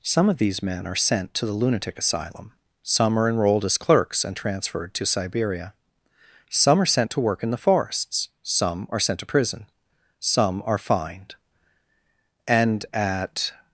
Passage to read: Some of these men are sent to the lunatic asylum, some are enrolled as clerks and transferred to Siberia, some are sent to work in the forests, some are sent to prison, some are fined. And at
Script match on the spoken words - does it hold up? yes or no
yes